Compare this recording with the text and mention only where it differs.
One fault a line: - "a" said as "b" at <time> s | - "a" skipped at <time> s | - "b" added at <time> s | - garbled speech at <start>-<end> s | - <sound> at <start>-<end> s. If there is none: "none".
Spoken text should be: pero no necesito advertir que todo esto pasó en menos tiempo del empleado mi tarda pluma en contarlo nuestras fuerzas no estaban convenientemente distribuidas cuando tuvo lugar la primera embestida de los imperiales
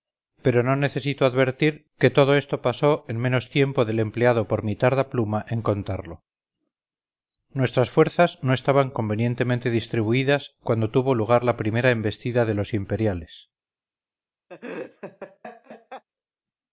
- "por" added at 4.5 s
- laugh at 14.5-16.0 s